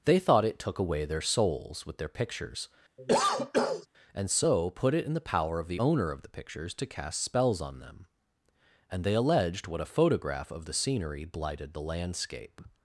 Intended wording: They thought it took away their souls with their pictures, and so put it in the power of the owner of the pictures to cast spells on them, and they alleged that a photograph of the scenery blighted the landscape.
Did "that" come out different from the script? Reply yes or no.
yes